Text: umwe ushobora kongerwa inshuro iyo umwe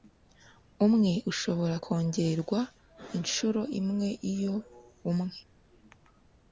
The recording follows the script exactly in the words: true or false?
false